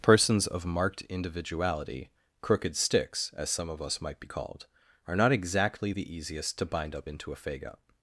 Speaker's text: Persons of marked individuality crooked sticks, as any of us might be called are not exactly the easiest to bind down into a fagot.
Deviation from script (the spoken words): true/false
true